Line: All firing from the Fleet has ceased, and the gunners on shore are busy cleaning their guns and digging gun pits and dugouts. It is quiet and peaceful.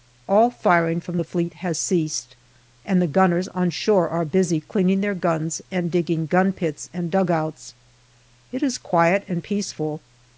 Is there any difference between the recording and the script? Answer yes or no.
no